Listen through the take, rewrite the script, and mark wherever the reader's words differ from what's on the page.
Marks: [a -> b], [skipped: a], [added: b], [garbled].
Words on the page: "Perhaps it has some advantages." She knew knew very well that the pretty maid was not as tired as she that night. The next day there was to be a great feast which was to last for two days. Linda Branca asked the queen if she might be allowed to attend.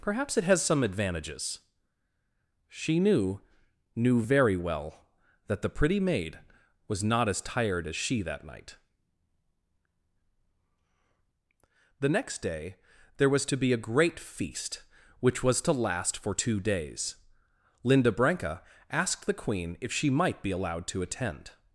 "Perhaps it has some advantages." She knew knew very well that the pretty maid was not as tired as she that night. The next day there was to be a great feast which was to last for two days. Linda Branca asked the queen if she might be allowed to attend.